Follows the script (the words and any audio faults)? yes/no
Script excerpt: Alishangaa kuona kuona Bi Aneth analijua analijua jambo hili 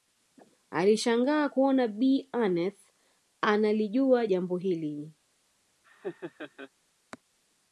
no